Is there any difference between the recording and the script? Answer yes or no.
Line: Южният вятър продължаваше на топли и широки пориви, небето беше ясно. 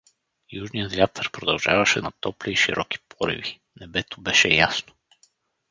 no